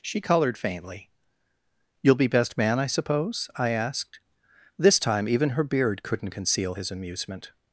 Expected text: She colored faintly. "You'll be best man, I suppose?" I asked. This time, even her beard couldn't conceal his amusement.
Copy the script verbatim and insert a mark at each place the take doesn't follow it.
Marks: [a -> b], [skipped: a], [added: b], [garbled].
She colored faintly. "You'll be best man, I suppose?" I asked. This time, even her beard couldn't conceal his amusement.